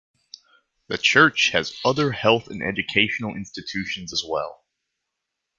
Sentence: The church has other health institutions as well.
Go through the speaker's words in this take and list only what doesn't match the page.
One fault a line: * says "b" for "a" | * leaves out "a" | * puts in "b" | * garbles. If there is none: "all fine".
* puts in "and educational"